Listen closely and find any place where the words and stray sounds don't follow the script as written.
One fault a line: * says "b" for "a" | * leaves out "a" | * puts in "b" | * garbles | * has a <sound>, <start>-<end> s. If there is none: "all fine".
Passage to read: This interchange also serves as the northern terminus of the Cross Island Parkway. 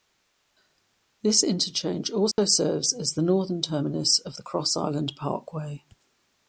* has a dropout, 2.3-2.4 s